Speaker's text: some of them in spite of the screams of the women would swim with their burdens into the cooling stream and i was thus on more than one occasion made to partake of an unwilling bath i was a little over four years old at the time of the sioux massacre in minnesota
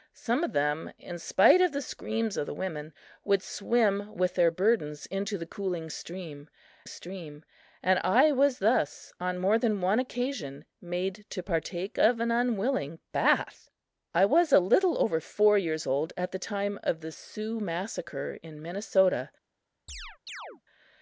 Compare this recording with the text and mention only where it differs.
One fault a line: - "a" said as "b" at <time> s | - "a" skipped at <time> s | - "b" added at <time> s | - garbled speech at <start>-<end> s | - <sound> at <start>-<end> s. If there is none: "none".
- "stream" added at 6.9 s
- chirp at 19.9-20.6 s